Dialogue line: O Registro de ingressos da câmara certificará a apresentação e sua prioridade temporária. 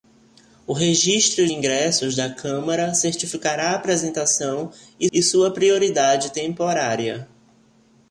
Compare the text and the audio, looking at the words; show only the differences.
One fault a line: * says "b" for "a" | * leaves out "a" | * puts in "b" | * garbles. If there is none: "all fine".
* leaves out "de"
* puts in "e"